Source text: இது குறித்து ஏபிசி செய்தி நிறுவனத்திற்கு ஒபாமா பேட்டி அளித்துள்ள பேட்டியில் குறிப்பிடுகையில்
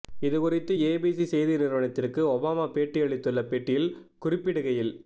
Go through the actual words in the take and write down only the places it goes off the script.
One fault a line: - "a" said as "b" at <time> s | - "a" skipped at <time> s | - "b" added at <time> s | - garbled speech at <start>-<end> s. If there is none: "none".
none